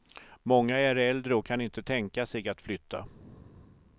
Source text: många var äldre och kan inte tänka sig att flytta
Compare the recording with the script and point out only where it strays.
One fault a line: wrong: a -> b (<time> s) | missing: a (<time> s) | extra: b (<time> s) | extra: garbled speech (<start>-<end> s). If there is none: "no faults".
wrong: var -> är (0.8 s)